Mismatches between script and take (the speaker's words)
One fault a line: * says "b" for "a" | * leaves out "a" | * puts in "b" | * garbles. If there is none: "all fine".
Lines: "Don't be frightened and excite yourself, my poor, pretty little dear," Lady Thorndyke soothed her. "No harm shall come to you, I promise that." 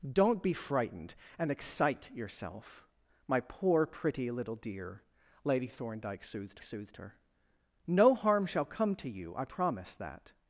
* puts in "soothed"